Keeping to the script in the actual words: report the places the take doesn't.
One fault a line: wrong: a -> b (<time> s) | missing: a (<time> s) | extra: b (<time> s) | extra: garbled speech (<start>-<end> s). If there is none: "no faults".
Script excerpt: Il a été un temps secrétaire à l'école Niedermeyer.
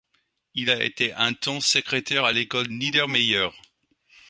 no faults